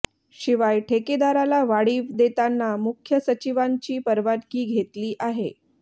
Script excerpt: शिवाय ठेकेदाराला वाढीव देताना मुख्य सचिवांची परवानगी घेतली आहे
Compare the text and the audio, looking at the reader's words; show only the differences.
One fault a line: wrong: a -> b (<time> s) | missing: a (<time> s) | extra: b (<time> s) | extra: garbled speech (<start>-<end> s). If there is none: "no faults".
no faults